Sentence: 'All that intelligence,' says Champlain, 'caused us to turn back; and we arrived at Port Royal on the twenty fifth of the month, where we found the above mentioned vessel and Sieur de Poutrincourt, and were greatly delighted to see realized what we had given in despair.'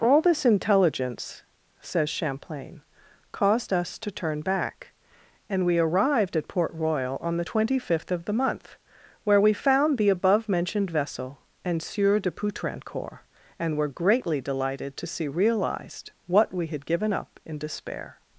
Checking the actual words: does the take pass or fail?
fail